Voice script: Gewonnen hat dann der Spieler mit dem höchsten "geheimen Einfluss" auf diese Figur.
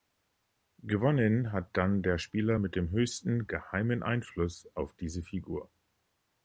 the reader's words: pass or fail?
pass